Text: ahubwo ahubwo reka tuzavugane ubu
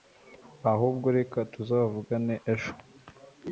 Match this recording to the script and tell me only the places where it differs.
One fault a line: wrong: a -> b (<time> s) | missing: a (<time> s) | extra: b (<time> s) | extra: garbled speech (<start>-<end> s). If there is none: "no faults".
missing: ahubwo (1.1 s)
wrong: ubu -> ejo (2.5 s)